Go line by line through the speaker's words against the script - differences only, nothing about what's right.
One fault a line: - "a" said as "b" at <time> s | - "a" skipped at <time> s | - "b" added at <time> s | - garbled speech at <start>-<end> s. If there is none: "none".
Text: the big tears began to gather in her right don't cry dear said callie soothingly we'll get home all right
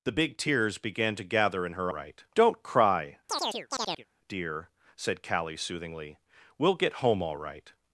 none